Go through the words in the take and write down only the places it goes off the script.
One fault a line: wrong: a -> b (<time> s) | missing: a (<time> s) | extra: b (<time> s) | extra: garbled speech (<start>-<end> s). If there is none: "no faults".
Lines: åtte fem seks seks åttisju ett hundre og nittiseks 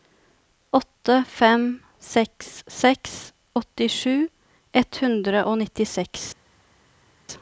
no faults